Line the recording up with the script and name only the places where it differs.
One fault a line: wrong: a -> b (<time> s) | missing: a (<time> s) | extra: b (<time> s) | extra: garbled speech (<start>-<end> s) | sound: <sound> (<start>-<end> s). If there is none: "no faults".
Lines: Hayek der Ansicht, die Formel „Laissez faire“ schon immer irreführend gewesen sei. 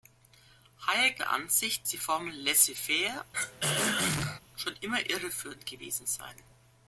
sound: throat clearing (3.3-4.4 s)